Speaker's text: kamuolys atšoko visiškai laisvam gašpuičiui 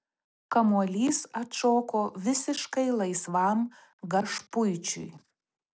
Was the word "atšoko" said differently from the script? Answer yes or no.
no